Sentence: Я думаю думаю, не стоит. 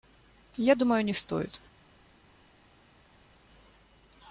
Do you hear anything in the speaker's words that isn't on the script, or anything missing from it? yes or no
yes